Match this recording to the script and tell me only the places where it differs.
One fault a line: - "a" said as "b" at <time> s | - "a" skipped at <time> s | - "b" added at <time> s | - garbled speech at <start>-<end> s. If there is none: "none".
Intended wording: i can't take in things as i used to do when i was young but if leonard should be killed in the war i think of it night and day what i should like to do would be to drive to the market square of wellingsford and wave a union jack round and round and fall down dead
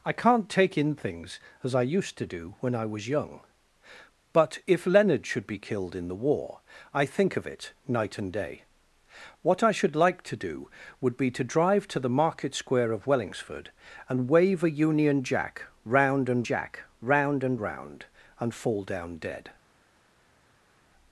- "jack round and" added at 16.4 s